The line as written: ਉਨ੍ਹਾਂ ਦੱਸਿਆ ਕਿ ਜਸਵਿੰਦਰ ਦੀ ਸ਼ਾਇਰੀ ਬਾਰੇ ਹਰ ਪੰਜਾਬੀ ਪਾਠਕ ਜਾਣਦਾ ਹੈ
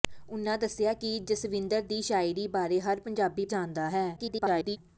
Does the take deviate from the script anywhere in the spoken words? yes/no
yes